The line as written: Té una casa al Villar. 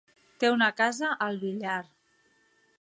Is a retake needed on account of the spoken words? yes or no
no